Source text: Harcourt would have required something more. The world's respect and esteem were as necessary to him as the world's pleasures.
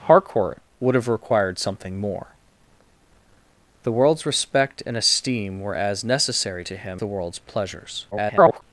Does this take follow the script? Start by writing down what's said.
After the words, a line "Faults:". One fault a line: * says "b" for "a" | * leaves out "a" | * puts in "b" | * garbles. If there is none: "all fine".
Harcourt would have required something more. The world's respect and esteem were as necessary to him the world's pleasures. [garbled]
Faults:
* leaves out "as"
* garbles